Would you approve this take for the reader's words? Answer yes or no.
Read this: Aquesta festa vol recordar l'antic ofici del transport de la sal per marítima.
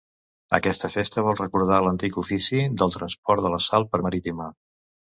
yes